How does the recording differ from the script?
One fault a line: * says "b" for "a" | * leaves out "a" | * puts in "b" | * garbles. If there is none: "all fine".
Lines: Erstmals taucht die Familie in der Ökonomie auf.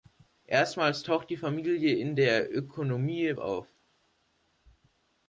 all fine